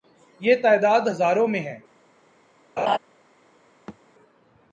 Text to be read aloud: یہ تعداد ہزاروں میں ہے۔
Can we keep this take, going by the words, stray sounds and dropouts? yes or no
no